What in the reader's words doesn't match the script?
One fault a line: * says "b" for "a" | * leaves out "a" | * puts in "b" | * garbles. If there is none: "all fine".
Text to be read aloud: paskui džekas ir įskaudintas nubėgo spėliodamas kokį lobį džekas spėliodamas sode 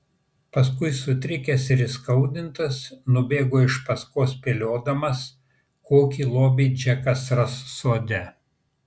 * says "sutrikęs" for "džekas"
* puts in "iš paskos"
* says "ras" for "spėliodamas"